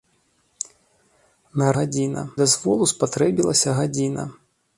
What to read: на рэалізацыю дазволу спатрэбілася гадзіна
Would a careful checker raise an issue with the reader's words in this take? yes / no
yes